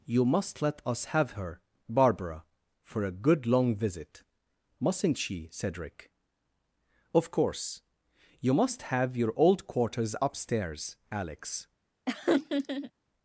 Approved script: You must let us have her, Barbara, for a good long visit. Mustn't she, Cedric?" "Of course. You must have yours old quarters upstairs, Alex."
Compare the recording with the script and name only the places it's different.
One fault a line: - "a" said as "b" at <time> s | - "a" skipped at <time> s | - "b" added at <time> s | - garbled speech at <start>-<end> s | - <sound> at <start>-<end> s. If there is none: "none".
- "yours" said as "your" at 9.2 s
- laugh at 12.1-12.9 s